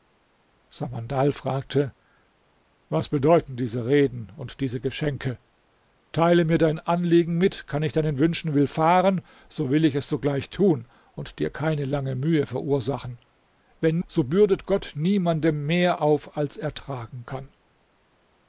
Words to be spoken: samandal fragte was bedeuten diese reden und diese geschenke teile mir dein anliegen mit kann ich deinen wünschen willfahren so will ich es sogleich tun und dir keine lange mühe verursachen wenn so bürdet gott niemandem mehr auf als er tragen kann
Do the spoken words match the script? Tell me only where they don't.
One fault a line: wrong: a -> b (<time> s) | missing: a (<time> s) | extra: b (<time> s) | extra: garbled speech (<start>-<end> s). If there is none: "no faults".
no faults